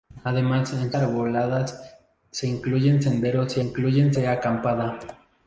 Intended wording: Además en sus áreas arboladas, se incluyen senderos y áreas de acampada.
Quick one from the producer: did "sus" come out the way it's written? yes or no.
no